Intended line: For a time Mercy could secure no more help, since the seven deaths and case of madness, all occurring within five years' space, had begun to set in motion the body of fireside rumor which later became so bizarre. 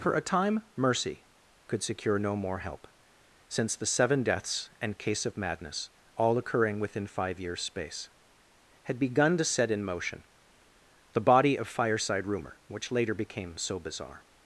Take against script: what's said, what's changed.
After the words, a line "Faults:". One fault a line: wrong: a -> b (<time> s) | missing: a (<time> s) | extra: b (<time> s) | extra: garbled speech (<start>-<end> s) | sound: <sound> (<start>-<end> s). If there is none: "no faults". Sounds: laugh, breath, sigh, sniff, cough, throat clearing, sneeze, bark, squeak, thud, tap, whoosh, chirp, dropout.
For a time Mercy could secure no more help, since the seven deaths and case of madness, all occurring within five years' space, had begun to set in motion the body of fireside rumor which later became so bizarre.
Faults:
no faults